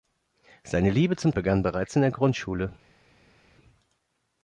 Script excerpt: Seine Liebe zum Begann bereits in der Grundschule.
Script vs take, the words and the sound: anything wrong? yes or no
no